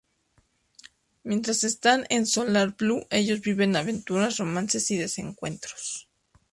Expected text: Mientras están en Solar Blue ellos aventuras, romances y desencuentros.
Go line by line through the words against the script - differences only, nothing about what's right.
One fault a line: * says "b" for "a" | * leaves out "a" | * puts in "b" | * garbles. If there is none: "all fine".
* puts in "viven"